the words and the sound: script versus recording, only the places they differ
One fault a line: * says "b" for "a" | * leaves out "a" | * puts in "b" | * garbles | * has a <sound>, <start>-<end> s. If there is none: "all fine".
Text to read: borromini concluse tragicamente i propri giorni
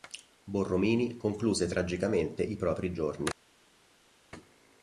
all fine